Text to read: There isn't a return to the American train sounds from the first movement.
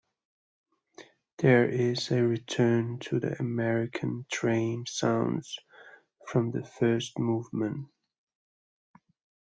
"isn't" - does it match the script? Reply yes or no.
no